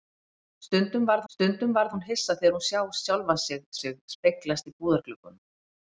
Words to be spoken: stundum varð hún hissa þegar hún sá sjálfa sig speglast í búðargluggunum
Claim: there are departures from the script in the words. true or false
true